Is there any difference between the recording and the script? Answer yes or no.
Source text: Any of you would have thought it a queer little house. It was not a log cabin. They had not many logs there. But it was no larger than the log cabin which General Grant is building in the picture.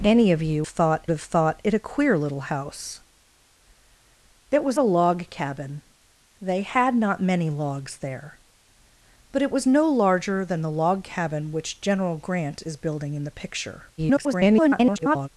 yes